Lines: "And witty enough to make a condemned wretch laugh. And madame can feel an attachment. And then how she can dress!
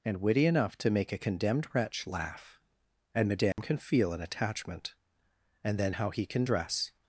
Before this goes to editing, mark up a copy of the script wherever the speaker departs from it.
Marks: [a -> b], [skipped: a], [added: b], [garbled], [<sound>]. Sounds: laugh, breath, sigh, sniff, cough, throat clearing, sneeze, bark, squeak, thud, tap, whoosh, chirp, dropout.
"And witty enough to make a condemned wretch laugh. And madame [dropout] can feel an attachment. And then how [she -> he] can dress!